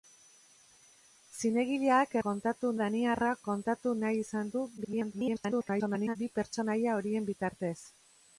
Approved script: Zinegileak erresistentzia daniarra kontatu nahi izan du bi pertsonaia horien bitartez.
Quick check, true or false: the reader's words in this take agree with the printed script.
false